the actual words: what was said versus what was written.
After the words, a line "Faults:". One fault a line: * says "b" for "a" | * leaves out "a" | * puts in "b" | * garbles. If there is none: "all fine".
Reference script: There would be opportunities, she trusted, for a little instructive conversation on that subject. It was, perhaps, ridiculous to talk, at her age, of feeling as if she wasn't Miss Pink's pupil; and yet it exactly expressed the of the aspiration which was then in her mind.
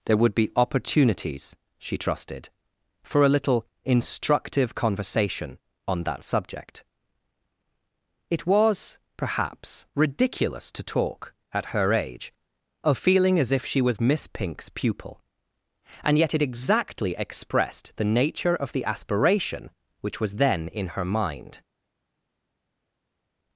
There would be opportunities, she trusted, for a little instructive conversation on that subject. It was, perhaps, ridiculous to talk, at her age, of feeling as if she was Miss Pink's pupil; and yet it exactly expressed the nature of the aspiration which was then in her mind.
Faults:
* says "was" for "wasn't"
* puts in "nature"